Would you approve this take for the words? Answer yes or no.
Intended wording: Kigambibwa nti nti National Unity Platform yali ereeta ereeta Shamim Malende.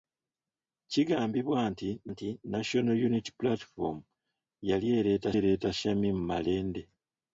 yes